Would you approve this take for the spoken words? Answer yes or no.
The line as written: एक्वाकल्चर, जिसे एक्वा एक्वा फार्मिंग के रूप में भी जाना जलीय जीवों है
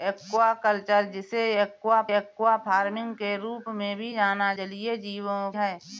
yes